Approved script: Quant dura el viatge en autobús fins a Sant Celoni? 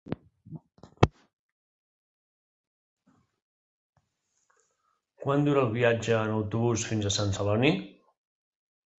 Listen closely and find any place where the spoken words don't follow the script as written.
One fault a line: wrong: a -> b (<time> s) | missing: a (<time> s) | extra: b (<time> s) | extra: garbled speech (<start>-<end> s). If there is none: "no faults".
no faults